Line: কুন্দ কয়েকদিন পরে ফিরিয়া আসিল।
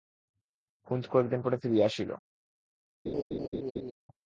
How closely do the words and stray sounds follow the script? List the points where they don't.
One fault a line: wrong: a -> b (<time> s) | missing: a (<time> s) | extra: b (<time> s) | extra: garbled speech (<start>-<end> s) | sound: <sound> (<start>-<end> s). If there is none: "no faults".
sound: laugh (3.1-3.9 s)